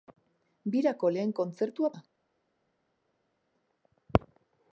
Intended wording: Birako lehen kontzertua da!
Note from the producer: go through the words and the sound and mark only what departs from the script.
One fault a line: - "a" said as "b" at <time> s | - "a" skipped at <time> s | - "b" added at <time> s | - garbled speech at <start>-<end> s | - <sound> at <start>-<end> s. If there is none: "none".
none